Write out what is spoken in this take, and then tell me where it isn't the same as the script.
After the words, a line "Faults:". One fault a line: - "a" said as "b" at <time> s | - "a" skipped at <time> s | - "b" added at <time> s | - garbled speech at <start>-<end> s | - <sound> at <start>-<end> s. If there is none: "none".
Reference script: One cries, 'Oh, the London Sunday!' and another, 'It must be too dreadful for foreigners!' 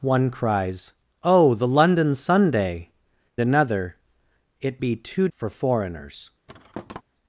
One cries, 'Oh, the London Sunday!' another, 'It be too for foreigners!'
Faults:
- "and" skipped at 2.9 s
- "must" skipped at 4.8 s
- "dreadful" skipped at 5.3 s
- thud at 6.5-7.0 s